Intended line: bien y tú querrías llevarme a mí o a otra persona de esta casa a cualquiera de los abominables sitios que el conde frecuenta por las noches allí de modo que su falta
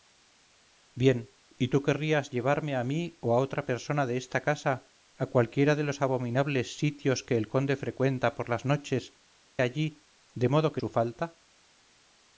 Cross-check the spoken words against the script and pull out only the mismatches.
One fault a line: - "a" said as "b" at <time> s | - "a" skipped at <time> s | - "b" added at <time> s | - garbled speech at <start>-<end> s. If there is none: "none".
none